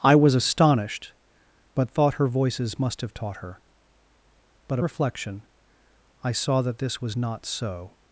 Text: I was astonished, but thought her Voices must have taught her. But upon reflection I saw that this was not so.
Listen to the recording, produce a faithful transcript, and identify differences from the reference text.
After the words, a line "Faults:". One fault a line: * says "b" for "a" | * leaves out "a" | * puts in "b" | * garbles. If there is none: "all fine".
I was astonished, but thought her Voices must have taught her. But reflection I saw that this was not so.
Faults:
* leaves out "upon"